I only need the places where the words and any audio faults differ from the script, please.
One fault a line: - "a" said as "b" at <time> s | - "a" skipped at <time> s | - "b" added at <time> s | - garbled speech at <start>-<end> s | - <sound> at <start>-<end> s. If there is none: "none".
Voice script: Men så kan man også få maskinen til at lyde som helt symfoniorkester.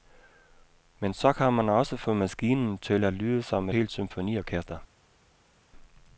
none